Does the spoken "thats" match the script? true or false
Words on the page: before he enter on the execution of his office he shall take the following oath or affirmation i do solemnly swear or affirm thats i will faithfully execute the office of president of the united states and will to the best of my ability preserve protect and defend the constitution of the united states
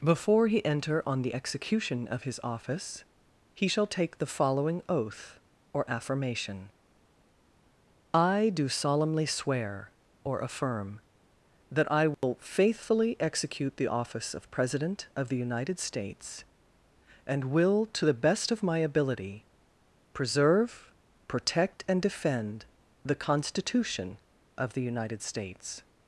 false